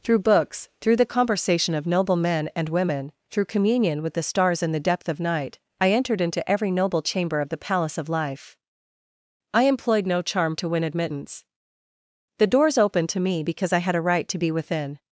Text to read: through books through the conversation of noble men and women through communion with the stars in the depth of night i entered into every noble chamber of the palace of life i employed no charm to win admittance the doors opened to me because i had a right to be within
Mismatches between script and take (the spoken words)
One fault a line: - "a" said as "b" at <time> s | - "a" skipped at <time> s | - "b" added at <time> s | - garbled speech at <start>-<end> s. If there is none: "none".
none